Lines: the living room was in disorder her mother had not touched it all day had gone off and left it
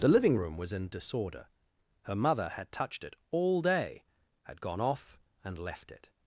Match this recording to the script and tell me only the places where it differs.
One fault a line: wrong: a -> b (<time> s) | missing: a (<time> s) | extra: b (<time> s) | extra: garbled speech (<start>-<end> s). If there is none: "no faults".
missing: not (2.7 s)